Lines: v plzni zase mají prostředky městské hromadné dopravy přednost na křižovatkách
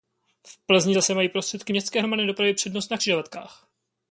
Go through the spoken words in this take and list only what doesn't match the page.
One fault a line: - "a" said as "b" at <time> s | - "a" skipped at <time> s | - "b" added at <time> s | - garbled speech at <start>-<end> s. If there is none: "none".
none